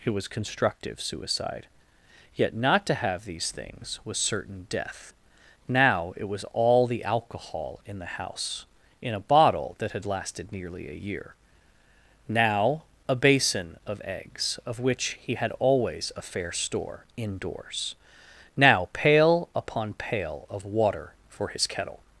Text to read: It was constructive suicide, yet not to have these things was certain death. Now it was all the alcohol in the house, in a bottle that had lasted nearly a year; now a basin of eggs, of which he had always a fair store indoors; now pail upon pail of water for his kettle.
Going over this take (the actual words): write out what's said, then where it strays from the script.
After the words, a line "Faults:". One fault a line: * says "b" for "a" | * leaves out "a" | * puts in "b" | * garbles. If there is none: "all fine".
It was constructive suicide, yet not to have these things was certain death. Now it was all the alcohol in the house, in a bottle that had lasted nearly a year; now a basin of eggs, of which he had always a fair store indoors; now pail upon pail of water for his kettle.
Faults:
all fine